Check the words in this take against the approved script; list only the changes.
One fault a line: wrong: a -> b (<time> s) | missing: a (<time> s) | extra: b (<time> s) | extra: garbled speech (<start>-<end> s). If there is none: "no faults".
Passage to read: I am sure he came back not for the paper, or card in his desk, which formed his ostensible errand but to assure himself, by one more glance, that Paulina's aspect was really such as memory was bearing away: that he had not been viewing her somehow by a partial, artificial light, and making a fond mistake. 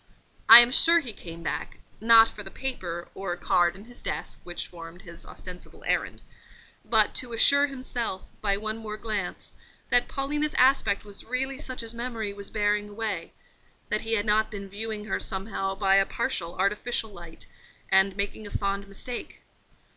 no faults